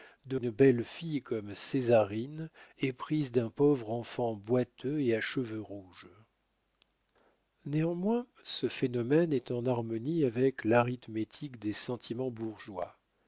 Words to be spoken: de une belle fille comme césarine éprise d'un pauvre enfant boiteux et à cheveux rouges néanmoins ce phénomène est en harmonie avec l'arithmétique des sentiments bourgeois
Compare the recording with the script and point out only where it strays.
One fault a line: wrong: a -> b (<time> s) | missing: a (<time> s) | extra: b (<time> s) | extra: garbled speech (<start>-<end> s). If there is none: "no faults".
no faults